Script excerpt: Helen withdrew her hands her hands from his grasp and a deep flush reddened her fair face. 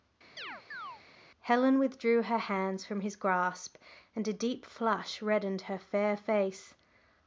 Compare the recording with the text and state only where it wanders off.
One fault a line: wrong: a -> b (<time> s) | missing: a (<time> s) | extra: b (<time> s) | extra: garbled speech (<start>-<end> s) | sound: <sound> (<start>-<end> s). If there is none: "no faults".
sound: chirp (0.4-1.0 s)
missing: her hands (2.9 s)